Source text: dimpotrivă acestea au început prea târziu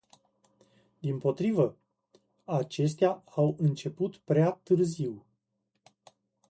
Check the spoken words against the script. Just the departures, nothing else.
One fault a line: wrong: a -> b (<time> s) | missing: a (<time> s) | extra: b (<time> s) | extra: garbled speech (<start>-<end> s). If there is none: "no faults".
no faults